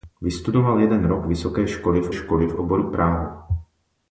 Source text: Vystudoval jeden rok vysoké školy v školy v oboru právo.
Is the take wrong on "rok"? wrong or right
right